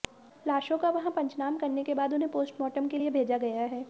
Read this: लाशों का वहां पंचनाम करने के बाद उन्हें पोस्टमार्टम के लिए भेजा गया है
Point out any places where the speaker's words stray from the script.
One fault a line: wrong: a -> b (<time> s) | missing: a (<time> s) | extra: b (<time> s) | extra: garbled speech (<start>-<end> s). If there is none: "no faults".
no faults